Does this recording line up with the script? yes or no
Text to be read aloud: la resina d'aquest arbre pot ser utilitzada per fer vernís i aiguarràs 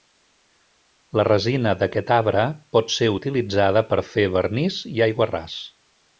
yes